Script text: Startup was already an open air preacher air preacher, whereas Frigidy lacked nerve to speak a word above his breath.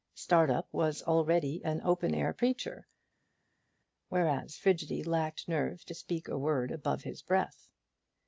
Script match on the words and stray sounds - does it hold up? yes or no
no